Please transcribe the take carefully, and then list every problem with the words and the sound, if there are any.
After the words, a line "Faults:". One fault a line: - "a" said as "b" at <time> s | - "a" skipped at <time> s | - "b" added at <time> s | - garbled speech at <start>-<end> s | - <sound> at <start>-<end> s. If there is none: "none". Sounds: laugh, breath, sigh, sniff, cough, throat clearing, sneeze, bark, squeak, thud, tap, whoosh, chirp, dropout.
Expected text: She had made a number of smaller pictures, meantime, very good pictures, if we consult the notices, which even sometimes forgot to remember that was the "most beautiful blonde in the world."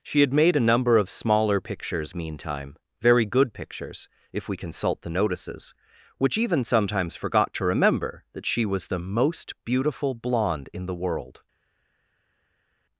She had made a number of smaller pictures, meantime, very good pictures, if we consult the notices, which even sometimes forgot to remember that she was the "most beautiful blonde in the world."
Faults:
- "she" added at 8.5 s